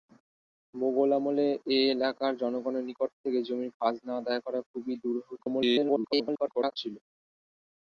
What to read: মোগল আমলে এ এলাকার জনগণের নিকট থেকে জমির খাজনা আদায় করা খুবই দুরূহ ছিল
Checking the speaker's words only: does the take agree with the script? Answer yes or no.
no